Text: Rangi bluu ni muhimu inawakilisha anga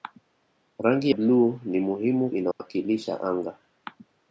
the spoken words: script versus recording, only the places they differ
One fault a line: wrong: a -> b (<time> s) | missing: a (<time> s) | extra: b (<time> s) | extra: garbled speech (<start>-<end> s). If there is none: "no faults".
no faults